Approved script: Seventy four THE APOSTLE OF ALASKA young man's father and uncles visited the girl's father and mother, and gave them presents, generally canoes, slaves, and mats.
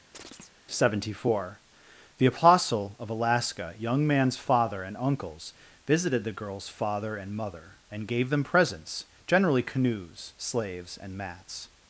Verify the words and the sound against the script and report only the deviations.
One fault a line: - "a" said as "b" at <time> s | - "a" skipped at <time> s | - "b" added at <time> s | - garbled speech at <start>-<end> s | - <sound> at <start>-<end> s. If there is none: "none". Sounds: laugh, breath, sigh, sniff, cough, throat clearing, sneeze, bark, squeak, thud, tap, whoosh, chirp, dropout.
- chirp at 0.1-0.5 s